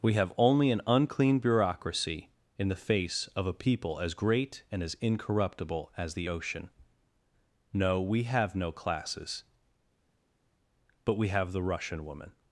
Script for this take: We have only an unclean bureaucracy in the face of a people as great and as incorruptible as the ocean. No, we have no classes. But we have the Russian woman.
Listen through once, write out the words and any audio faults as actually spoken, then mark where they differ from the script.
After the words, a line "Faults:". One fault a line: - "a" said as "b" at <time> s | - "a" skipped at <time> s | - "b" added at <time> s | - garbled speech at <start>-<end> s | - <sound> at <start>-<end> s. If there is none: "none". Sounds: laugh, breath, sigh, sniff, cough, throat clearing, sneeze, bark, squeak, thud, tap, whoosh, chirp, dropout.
We have only an unclean bureaucracy in the face of a people as great and as incorruptible as the ocean. No, we have no classes. But we have the Russian woman.
Faults:
none